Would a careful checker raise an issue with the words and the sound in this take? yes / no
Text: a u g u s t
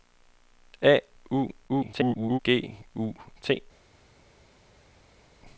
yes